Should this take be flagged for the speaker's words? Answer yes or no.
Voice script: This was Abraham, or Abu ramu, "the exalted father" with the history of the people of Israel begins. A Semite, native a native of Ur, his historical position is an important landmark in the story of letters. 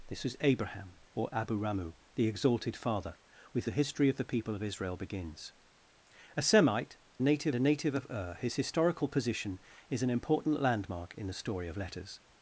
no